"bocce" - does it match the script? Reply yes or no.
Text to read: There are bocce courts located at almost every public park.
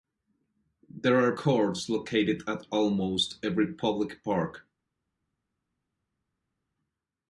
no